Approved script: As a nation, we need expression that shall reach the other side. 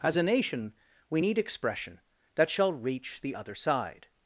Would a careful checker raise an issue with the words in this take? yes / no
no